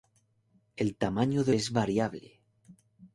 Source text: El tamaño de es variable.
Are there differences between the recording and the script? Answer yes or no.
no